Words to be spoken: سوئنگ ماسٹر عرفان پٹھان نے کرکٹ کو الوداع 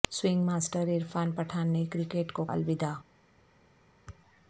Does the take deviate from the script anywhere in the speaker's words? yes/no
no